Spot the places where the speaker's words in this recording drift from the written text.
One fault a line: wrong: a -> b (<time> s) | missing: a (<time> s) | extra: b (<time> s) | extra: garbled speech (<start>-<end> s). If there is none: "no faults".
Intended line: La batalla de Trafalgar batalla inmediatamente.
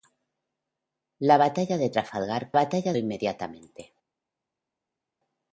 no faults